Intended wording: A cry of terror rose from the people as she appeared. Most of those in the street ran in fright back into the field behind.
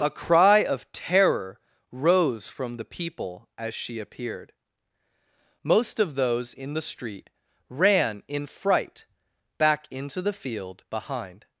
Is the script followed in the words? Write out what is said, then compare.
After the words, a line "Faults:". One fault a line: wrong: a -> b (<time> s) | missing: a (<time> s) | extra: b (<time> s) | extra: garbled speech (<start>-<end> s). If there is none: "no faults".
A cry of terror rose from the people as she appeared. Most of those in the street ran in fright back into the field behind.
Faults:
no faults